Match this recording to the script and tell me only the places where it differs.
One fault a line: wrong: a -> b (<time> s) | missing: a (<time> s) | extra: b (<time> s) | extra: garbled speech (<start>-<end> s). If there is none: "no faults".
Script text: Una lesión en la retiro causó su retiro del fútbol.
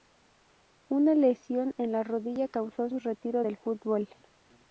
wrong: retiro -> rodilla (2.0 s)